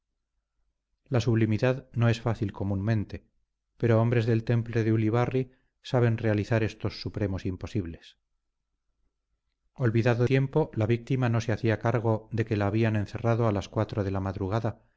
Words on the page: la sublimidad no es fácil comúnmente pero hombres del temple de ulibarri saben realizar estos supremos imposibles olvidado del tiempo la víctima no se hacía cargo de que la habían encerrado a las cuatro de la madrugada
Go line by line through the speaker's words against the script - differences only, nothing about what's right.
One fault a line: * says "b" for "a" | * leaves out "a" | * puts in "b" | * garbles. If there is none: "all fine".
* leaves out "del"